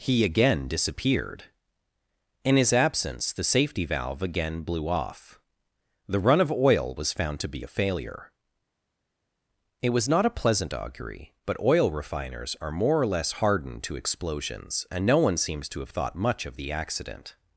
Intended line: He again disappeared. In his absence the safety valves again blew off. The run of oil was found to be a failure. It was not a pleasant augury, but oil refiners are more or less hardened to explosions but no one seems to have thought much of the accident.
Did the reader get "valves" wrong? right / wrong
wrong